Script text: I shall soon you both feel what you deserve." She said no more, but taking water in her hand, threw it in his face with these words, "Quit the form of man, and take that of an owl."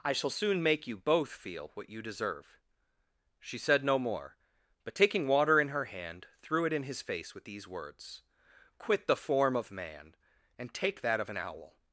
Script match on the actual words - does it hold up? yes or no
no